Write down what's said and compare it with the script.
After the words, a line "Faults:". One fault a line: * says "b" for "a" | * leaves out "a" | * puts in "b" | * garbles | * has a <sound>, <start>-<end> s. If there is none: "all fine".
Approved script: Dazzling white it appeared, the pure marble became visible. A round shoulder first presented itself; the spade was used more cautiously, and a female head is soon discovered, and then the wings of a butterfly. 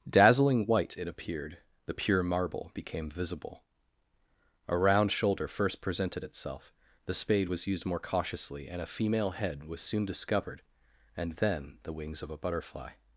Dazzling white it appeared, the pure marble became visible. A round shoulder first presented itself; the spade was used more cautiously, and a female head was soon discovered, and then the wings of a butterfly.
Faults:
* says "was" for "is"